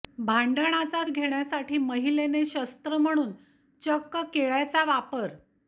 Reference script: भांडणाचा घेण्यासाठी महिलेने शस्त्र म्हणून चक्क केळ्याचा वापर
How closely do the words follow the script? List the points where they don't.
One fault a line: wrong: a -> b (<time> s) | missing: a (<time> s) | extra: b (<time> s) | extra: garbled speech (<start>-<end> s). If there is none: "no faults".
no faults